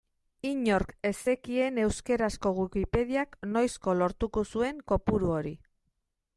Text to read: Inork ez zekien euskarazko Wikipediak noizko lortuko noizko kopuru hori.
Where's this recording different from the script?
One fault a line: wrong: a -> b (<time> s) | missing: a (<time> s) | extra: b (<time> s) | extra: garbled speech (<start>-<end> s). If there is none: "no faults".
wrong: noizko -> zuen (4.5 s)